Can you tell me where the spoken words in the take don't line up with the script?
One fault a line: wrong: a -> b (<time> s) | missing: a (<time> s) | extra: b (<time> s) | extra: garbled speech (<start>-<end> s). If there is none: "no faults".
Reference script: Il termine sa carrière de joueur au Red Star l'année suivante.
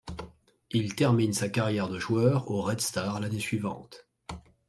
no faults